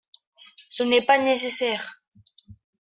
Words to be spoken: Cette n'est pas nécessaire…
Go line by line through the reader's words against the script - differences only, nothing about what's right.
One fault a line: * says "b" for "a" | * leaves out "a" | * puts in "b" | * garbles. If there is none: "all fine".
* says "Ce" for "Cette"